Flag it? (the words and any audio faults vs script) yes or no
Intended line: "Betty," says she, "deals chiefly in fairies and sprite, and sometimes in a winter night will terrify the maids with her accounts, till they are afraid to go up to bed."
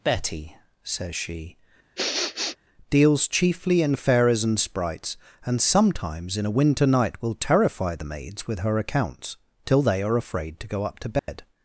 yes